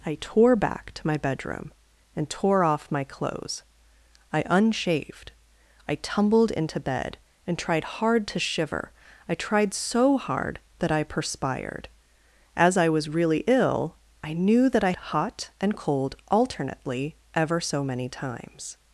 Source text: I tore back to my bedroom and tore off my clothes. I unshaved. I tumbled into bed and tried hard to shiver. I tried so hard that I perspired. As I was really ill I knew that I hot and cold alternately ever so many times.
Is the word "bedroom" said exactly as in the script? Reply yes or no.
yes